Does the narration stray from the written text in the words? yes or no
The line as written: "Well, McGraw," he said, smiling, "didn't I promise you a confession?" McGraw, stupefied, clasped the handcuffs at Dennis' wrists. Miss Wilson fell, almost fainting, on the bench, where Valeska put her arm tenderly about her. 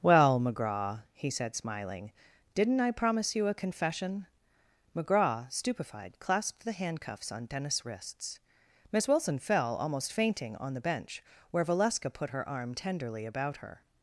yes